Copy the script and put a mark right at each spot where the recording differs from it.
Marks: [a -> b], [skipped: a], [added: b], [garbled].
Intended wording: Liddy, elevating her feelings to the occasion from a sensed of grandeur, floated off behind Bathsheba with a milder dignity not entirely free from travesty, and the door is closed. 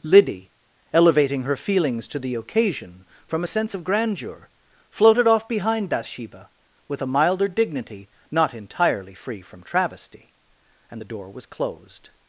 Liddy, elevating her feelings to the occasion from a [sensed -> sense] of grandeur, floated off behind Bathsheba with a milder dignity not entirely free from travesty, and the door [is -> was] closed.